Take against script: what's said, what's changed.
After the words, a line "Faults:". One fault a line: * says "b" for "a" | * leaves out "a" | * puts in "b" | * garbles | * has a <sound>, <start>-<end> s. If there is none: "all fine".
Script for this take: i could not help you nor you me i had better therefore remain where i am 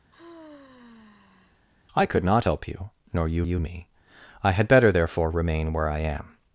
i could not help you nor you you me i had better therefore remain where i am
Faults:
* has a sigh, 0.1-1.7 s
* puts in "you"